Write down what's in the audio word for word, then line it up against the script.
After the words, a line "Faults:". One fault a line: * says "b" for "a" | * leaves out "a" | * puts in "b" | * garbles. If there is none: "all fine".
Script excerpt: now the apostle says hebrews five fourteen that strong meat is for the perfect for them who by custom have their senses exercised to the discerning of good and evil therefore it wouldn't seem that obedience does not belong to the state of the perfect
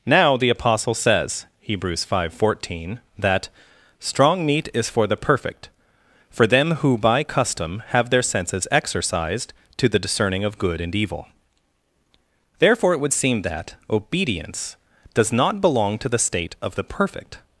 now the apostle says hebrews five fourteen that strong meat is for the perfect for them who by custom have their senses exercised to the discerning of good and evil therefore it would seem that obedience does not belong to the state of the perfect
Faults:
* says "would" for "wouldn't"